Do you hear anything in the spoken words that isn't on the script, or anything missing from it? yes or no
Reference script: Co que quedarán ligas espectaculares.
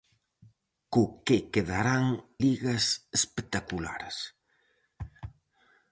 no